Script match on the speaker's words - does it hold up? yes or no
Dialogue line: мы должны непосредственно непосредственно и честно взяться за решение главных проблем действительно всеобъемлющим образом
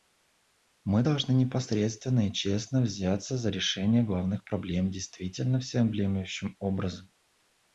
no